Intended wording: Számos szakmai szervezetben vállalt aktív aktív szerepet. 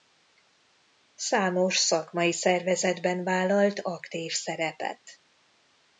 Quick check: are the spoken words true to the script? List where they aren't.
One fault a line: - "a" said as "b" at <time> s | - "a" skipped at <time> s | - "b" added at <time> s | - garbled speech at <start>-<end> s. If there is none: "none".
- "aktív" skipped at 4.3 s